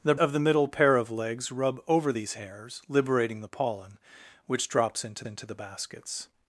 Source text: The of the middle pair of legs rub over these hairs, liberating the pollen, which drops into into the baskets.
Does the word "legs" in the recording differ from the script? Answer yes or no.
no